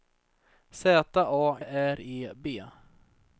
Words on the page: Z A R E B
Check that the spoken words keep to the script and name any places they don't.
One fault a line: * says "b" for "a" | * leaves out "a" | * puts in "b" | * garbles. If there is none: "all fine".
all fine